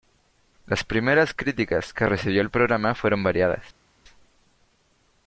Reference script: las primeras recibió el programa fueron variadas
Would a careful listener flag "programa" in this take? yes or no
no